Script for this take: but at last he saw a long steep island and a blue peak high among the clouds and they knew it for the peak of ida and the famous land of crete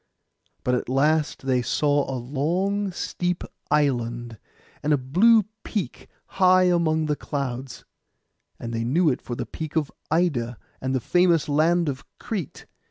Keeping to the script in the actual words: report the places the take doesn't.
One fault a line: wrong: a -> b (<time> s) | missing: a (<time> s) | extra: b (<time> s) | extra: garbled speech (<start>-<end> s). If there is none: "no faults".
wrong: he -> they (1.4 s)